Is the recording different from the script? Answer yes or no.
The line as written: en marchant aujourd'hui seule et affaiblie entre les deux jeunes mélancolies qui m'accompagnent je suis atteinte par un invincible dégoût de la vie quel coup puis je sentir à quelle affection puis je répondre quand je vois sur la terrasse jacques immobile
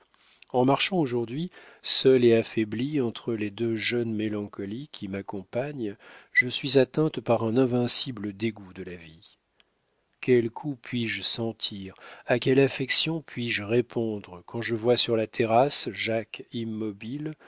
no